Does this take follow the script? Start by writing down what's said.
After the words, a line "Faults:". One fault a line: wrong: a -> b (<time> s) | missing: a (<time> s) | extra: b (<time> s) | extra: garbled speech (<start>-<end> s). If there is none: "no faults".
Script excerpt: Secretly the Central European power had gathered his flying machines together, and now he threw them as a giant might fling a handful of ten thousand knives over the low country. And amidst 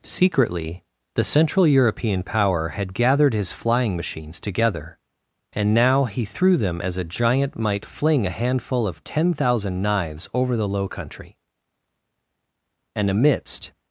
Secretly the Central European power had gathered his flying machines together, and now he threw them as a giant might fling a handful of ten thousand knives over the low country. And amidst
Faults:
no faults